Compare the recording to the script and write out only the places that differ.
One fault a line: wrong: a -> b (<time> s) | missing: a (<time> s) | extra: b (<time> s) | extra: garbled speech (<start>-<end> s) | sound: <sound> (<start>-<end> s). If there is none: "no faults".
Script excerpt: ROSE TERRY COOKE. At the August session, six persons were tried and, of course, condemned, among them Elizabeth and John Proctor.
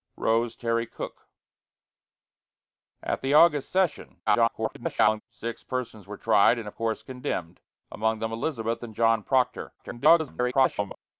extra: garbled speech (4.3-5.2 s)
extra: garbled speech (9.8-11.0 s)